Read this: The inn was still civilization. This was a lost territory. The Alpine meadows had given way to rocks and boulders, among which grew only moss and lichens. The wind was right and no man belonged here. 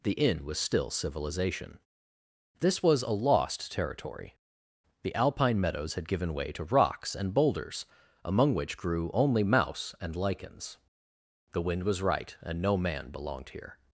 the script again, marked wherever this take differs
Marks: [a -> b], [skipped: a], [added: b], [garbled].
The inn was still civilization. This was a lost territory. The Alpine meadows had given way to rocks and boulders, among which grew only [moss -> mouse] and lichens. The wind was right and no man belonged here.